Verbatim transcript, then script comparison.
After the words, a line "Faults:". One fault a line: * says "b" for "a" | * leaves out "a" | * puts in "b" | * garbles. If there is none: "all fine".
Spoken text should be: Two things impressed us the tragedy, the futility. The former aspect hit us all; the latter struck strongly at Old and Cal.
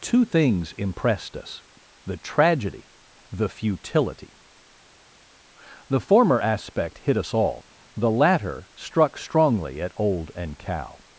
Two things impressed us the tragedy, the futility. The former aspect hit us all; the latter struck strongly at Old and Cal.
Faults:
all fine